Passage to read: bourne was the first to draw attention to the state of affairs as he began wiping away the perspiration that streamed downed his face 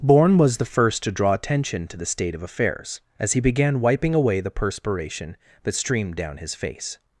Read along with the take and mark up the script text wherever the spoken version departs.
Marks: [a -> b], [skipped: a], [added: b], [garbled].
bourne was the first to draw attention to the state of affairs as he began wiping away the perspiration that streamed [downed -> down] his face